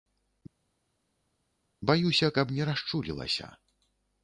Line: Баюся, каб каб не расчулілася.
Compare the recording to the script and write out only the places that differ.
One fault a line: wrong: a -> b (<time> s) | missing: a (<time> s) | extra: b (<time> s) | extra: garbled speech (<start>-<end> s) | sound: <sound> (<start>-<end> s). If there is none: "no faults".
missing: каб (2.5 s)